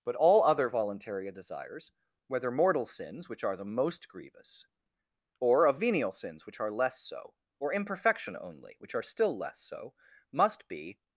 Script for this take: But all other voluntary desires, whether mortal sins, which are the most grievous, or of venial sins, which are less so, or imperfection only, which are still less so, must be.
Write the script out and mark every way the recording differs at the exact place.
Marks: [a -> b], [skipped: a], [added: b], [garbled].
But all other voluntary desires, whether mortal sins, which are the most grievous, or of venial sins, which are less so, or imperfection only, which are still less so, must be.